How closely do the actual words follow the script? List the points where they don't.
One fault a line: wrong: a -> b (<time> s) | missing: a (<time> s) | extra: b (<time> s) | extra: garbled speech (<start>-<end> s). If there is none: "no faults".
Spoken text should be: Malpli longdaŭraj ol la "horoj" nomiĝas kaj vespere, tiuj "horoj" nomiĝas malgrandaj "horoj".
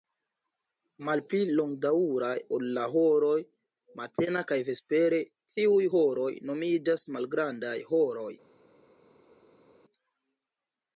wrong: nomiĝas -> matena (4.0 s)